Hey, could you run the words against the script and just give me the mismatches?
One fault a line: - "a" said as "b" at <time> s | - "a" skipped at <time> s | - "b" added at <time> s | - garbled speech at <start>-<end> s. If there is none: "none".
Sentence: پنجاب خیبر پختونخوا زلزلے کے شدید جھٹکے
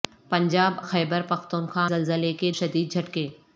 none